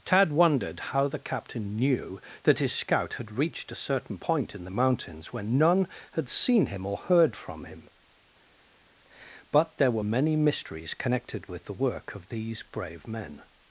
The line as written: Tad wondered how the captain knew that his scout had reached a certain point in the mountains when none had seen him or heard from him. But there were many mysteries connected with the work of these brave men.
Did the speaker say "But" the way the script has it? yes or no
yes